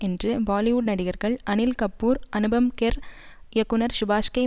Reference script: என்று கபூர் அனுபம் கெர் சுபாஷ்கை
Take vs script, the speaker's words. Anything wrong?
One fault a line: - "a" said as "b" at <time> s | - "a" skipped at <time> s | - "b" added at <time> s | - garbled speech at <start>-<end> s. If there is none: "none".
- "பாலிவுட் நடிகர்கள் அனில்" added at 0.5 s
- "இயக்குனர்" added at 3.5 s